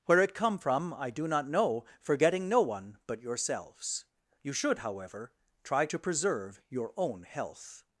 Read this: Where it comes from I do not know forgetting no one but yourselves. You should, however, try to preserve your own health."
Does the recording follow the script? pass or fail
fail